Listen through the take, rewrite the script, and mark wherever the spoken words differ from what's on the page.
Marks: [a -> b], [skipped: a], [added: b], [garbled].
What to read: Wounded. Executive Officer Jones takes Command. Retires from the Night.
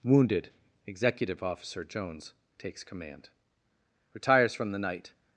Wounded. Executive Officer Jones takes Command. Retires from the Night.